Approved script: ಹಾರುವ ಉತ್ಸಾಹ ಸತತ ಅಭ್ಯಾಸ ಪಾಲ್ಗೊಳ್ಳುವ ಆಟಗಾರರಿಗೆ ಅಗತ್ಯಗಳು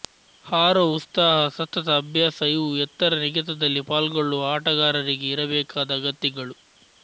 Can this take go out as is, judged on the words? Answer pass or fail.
fail